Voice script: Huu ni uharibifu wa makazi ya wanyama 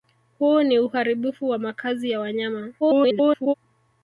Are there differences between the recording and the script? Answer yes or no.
yes